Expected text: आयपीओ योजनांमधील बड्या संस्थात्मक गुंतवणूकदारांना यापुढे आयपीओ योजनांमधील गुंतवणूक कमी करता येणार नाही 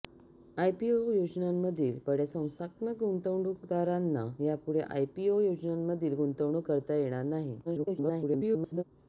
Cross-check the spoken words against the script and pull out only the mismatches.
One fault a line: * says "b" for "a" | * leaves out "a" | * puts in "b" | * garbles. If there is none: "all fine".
* leaves out "कमी"
* garbles